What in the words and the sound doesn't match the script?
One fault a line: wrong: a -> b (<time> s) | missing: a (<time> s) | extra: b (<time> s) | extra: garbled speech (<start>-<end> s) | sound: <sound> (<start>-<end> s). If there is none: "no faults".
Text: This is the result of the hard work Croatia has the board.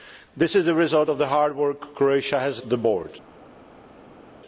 no faults